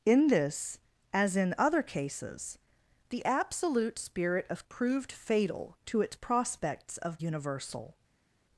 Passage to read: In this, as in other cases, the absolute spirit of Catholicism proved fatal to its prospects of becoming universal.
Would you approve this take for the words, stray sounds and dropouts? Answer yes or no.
no